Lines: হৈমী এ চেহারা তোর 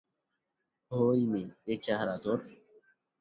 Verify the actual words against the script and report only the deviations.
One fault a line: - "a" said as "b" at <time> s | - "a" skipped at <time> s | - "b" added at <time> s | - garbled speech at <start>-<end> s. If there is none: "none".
none